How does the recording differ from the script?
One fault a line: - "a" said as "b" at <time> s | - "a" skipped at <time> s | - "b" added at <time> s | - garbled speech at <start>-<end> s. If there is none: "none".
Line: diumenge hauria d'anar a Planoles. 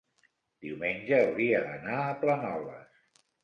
none